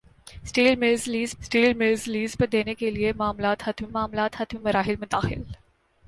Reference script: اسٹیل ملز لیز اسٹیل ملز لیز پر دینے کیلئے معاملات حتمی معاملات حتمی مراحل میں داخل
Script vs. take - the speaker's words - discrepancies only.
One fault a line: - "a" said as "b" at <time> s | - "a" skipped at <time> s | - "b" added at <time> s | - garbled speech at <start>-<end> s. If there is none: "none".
none